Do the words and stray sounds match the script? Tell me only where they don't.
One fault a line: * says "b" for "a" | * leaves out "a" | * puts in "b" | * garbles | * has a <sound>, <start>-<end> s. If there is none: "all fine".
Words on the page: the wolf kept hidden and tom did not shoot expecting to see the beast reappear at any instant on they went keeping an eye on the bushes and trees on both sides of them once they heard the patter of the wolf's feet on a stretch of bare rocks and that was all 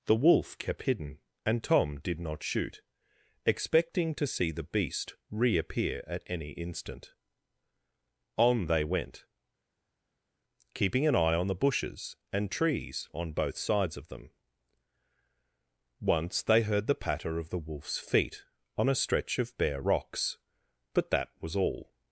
* says "but" for "and"